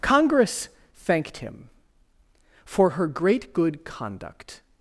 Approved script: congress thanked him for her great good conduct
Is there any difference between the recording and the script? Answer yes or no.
no